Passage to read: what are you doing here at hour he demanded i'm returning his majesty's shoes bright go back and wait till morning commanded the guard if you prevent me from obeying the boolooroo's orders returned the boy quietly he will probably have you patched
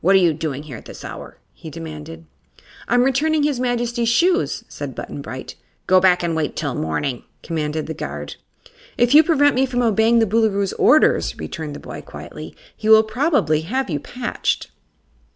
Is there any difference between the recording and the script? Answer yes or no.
yes